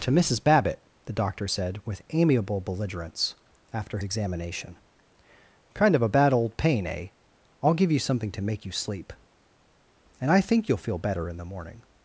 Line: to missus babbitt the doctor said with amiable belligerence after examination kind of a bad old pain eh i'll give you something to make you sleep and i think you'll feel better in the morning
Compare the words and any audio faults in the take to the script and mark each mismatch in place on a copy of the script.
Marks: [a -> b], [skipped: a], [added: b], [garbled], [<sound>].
to missus babbitt the doctor said with amiable belligerence after examination kind of a bad old pain eh i'll give you something to make you sleep and i think you'll feel better in the morning